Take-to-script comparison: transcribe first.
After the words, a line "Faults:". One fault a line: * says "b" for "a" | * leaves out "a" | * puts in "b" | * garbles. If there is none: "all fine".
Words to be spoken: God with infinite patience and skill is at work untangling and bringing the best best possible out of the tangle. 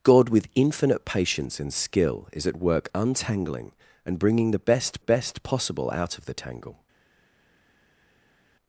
God with infinite patience and skill is at work untangling and bringing the best best possible out of the tangle.
Faults:
all fine